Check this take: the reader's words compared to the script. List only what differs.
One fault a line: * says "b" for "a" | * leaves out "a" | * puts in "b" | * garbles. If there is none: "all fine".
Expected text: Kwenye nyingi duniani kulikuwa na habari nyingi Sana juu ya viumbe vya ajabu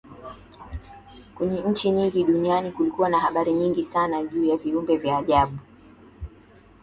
* puts in "nchi"